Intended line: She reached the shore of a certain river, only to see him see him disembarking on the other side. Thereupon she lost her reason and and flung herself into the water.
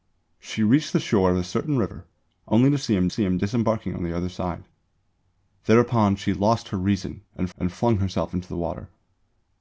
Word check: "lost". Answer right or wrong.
right